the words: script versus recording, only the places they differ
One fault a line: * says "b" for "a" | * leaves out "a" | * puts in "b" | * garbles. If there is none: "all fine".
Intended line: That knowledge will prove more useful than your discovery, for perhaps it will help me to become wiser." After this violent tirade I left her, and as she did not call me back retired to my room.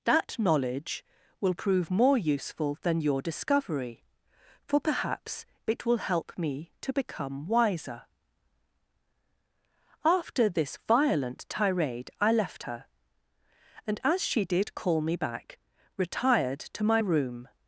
* leaves out "not"